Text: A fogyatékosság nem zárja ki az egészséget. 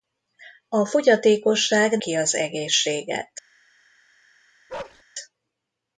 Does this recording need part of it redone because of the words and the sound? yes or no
yes